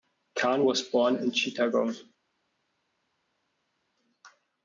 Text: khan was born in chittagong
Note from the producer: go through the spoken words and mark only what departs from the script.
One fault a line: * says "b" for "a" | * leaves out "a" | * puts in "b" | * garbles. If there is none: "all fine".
all fine